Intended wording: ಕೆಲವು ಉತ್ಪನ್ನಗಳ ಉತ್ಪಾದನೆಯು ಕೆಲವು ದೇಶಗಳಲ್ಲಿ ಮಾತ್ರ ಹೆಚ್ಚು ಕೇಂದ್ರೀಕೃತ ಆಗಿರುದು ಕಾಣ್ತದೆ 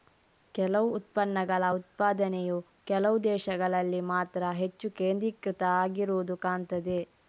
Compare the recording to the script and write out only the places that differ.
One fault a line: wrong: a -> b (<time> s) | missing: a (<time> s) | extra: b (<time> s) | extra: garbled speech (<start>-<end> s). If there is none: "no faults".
no faults